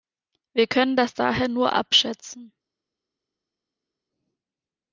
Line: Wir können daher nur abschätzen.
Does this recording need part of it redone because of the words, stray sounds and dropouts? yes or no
yes